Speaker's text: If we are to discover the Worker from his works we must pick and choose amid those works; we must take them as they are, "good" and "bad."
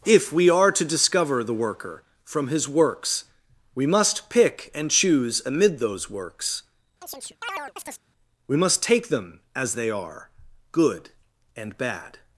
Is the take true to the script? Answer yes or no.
yes